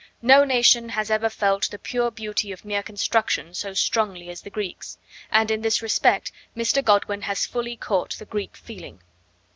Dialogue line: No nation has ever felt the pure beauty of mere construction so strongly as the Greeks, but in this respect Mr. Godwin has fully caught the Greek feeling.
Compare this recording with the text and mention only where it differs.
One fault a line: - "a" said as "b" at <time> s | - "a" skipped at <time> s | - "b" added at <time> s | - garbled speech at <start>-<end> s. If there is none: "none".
- "but" said as "and" at 5.3 s